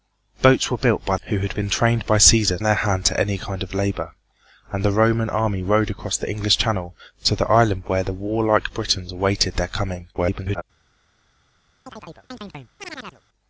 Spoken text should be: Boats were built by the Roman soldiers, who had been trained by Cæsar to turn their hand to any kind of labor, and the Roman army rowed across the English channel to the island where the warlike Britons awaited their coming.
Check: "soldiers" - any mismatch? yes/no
yes